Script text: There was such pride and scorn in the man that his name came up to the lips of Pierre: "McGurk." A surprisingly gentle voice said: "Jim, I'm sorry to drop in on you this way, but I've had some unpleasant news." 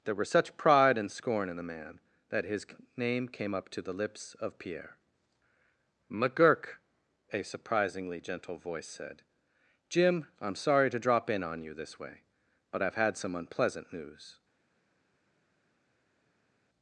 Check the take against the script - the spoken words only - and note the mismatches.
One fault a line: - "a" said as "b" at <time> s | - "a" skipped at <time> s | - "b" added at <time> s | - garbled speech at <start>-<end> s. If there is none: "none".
- "was" said as "were" at 0.1 s